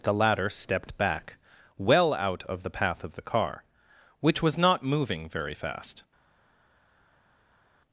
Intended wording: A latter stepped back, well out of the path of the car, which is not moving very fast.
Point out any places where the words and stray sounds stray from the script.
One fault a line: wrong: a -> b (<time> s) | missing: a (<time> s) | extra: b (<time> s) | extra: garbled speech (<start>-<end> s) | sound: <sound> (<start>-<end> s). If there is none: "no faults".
wrong: A -> The (0.0 s)
wrong: is -> was (4.4 s)